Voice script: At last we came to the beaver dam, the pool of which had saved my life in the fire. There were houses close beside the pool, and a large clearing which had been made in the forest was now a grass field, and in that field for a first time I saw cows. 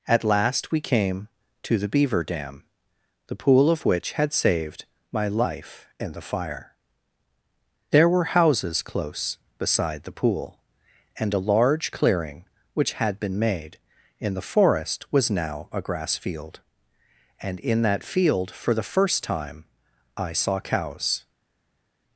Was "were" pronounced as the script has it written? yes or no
yes